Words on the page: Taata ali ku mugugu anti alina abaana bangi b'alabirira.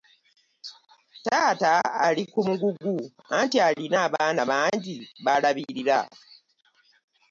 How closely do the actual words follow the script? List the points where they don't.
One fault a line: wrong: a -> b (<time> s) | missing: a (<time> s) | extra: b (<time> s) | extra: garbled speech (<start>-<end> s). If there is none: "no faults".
no faults